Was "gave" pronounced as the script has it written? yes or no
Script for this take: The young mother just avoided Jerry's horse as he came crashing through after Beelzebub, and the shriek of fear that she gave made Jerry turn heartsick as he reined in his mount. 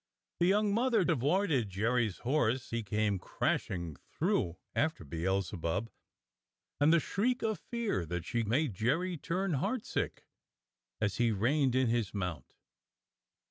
no